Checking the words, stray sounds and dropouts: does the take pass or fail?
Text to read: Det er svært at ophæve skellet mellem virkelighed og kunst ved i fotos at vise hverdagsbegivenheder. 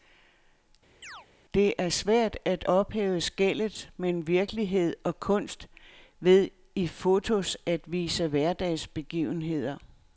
fail